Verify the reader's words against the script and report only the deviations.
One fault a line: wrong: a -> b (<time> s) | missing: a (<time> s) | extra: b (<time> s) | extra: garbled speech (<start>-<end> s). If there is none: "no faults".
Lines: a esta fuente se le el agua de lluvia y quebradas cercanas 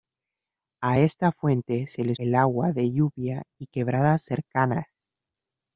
no faults